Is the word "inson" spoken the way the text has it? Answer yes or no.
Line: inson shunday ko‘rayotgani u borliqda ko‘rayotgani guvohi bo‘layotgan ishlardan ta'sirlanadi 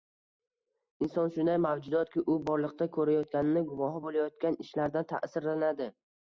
yes